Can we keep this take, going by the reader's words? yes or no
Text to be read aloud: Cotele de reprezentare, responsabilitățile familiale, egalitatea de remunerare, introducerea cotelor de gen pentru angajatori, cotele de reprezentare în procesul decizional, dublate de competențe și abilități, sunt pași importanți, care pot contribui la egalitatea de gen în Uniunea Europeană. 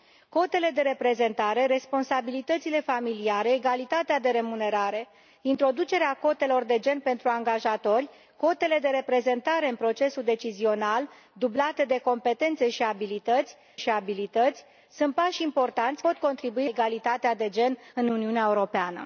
no